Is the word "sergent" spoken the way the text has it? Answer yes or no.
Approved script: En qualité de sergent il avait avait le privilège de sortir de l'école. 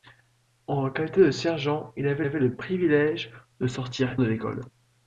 yes